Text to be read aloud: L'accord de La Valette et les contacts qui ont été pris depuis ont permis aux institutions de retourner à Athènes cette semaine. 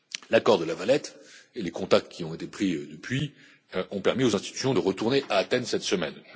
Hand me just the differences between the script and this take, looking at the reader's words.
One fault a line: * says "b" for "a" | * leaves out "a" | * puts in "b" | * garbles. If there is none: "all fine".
all fine